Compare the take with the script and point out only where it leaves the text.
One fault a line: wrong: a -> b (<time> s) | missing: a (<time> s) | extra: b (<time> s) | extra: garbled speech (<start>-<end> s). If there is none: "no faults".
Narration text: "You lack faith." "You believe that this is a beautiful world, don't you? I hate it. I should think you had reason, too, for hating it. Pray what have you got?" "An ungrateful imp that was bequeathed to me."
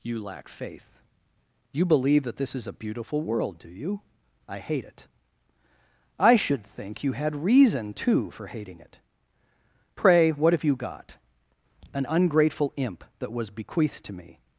wrong: don't -> do (3.6 s)